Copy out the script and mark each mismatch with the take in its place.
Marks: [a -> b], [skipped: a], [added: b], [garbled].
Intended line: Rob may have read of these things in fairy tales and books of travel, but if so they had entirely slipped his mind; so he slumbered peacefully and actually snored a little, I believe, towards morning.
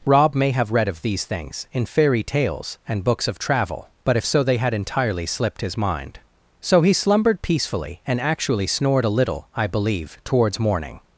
Rob may have read of these things in fairy tales and books of travel, but if so they had entirely slipped his mind; so he slumbered peacefully and actually snored a little, I believe, towards morning.